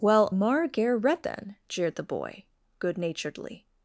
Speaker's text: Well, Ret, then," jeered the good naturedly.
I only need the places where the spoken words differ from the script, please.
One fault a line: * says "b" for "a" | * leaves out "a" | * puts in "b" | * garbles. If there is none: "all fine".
* puts in "Mar ger"
* puts in "boy"